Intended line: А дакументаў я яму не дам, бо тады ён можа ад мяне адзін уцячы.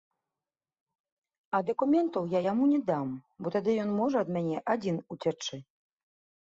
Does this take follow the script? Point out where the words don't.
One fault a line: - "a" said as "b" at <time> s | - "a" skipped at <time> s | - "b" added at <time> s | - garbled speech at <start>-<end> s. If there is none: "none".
none